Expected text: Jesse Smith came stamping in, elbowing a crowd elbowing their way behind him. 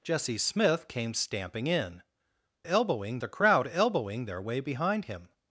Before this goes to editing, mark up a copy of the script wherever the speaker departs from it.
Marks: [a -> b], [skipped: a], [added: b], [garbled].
Jesse Smith came stamping in, elbowing a crowd elbowing their way behind him.